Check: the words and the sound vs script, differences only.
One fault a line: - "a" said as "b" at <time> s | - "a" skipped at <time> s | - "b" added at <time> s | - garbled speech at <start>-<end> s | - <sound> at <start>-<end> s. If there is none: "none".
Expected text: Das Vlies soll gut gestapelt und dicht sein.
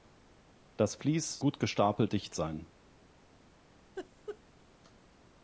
- "soll" skipped at 1.4 s
- "und" skipped at 2.1 s
- laugh at 4.0-4.4 s